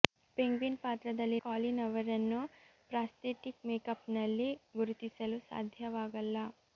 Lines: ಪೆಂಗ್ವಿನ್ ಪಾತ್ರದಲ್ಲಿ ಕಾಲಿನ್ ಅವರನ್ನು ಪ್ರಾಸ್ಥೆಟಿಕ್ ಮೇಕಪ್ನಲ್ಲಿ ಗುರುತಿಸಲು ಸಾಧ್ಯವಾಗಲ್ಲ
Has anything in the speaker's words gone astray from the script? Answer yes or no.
no